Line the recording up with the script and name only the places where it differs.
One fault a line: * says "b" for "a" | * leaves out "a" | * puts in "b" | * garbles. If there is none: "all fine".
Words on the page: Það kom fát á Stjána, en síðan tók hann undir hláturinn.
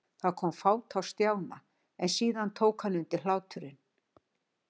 all fine